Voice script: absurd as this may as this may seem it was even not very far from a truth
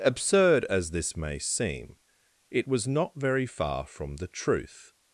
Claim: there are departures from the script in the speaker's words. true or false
true